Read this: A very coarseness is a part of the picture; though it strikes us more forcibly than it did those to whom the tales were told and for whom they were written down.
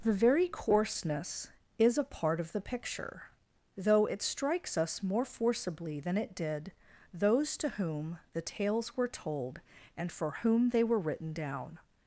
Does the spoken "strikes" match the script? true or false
true